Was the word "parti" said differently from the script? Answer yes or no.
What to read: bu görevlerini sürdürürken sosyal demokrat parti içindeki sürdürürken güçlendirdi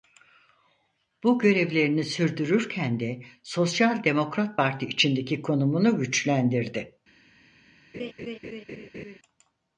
no